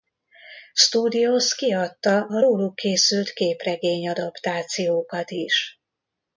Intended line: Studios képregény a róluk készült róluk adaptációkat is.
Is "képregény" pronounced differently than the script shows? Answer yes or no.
yes